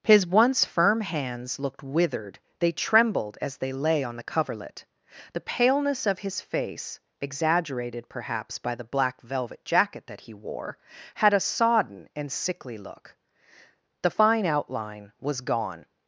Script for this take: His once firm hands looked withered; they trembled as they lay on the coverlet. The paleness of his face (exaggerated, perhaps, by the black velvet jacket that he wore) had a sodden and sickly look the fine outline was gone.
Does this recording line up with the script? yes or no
yes